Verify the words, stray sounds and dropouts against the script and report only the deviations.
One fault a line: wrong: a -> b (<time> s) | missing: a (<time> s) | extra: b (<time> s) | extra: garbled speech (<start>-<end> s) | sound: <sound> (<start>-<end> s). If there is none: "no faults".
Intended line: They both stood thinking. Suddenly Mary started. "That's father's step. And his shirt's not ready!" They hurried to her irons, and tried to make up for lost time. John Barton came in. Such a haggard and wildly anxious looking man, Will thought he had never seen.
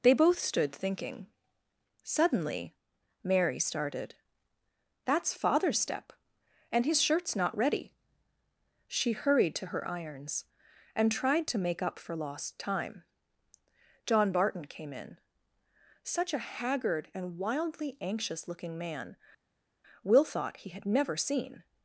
wrong: They -> She (8.9 s)